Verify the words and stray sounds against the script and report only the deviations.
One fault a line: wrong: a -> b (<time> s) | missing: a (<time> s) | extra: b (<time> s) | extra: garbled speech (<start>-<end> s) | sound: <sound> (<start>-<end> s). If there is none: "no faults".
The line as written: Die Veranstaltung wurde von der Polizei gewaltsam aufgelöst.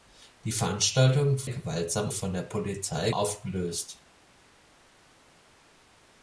wrong: wurde -> gewaltsam (1.5 s)
missing: gewaltsam (3.1 s)